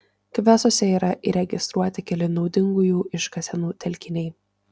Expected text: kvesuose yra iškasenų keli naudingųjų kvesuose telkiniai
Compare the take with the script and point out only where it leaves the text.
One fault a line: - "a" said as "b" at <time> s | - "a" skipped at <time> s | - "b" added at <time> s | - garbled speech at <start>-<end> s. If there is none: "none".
- "iškasenų" said as "įregistruoti" at 1.3 s
- "kvesuose" said as "iškasenų" at 3.2 s